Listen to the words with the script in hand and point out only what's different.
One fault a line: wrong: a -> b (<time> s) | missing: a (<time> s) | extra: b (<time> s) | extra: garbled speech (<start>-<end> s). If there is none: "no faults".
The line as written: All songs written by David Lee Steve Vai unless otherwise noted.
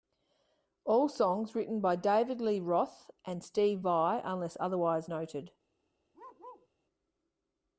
extra: Roth and (2.6 s)